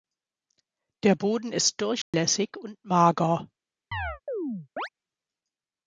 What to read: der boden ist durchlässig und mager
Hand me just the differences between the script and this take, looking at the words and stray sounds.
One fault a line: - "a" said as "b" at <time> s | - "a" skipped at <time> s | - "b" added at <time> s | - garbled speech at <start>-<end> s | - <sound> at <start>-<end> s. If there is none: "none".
- dropout at 2.0-2.1 s
- chirp at 3.9-4.9 s